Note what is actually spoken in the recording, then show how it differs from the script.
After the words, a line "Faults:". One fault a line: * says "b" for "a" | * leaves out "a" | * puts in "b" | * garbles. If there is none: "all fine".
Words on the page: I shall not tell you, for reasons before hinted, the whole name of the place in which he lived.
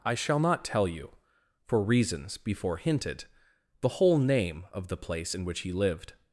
I shall not tell you, for reasons before hinted, the whole name of the place in which he lived.
Faults:
all fine